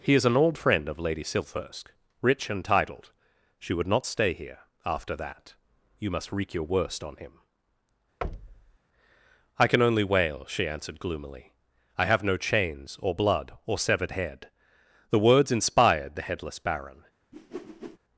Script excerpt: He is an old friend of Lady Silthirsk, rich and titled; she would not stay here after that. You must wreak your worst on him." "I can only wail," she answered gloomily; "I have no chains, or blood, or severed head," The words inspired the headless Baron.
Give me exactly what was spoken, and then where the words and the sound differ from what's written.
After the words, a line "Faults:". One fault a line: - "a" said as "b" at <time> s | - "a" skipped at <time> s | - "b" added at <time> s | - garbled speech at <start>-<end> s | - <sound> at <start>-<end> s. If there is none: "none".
He is an old friend of Lady Silthirsk, rich and titled; she would not stay here after that. You must wreak your worst on him." "I can only wail," she answered gloomily; "I have no chains, or blood, or severed head," The words inspired the headless Baron.
Faults:
- thud at 8.2-8.8 s
- whoosh at 17.3-18.0 s